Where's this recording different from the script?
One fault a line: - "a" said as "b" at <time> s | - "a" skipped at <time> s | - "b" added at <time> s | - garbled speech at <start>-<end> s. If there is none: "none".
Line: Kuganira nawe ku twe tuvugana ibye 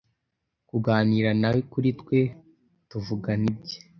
- "ku" said as "kuri" at 1.7 s